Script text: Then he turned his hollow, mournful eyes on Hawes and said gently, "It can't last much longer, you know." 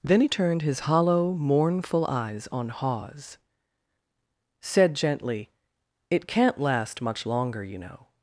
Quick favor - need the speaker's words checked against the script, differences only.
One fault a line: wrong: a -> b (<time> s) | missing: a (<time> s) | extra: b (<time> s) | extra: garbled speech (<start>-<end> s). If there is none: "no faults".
missing: and (3.4 s)